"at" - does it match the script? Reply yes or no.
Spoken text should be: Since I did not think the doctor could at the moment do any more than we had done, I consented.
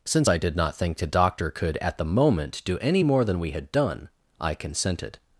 yes